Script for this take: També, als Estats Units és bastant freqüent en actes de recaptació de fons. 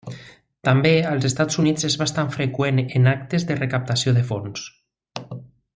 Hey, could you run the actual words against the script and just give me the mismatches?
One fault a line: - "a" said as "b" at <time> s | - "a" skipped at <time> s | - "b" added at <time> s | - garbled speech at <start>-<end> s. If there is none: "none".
none